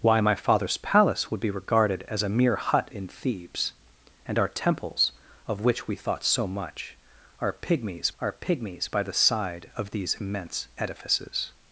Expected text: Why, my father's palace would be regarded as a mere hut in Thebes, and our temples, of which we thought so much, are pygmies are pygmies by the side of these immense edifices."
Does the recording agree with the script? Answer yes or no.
yes